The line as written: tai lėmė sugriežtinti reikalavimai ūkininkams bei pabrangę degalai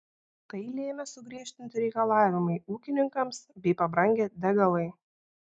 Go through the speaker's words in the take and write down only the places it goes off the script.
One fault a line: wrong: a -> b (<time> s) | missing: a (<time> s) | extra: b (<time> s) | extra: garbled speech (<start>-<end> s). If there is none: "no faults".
no faults